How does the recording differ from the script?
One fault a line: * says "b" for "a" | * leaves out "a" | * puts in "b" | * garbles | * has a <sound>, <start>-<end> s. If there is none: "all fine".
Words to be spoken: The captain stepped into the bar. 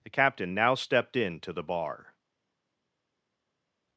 * puts in "now"